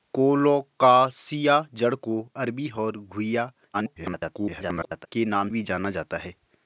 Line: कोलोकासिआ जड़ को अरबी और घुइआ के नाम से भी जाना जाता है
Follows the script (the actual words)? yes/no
no